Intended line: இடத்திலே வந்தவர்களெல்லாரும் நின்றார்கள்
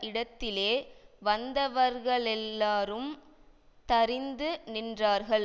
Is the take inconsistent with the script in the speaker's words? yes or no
yes